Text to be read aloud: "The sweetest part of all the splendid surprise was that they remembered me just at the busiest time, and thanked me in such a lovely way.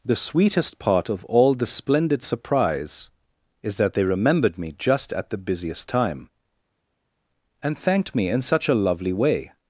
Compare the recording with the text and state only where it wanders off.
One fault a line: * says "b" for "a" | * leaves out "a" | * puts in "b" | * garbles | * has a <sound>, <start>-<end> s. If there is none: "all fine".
* says "is" for "was"